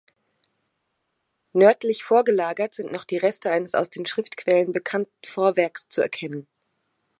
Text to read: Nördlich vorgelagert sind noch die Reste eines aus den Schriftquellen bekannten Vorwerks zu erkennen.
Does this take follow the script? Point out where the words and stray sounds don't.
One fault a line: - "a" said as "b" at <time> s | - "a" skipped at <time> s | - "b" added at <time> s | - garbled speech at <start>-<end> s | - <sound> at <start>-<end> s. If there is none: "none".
none